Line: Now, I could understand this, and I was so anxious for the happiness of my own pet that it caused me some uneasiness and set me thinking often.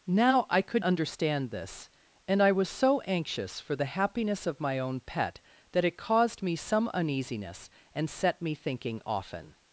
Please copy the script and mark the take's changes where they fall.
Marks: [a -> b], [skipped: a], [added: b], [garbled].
Now, I could understand this, and I was so anxious for the happiness of my own pet that it caused me some uneasiness and set me thinking often.